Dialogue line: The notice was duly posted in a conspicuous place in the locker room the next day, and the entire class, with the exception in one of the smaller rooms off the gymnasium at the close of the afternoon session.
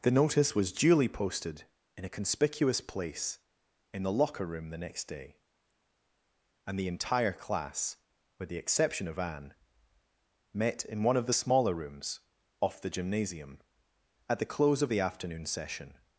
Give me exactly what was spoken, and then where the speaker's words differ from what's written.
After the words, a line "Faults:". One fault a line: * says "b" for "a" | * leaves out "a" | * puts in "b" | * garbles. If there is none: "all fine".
The notice was duly posted in a conspicuous place in the locker room the next day, and the entire class, with the exception of Anne, met in one of the smaller rooms off the gymnasium at the close of the afternoon session.
Faults:
* puts in "of Anne met"